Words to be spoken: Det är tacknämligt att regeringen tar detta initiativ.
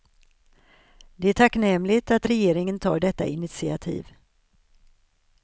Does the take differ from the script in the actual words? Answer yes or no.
no